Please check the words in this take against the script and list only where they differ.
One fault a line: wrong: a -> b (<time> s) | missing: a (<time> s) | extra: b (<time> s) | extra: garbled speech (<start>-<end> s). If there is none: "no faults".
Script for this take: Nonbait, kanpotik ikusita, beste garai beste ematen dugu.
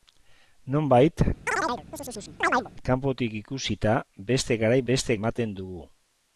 no faults